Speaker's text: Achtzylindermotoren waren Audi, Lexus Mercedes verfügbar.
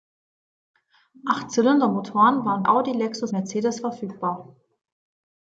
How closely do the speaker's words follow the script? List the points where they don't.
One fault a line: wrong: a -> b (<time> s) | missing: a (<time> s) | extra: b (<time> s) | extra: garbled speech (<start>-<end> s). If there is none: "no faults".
no faults